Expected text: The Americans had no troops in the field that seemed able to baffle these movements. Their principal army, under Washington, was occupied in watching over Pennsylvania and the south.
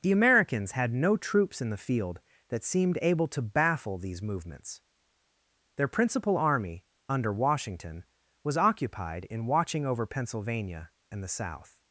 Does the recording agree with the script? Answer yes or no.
yes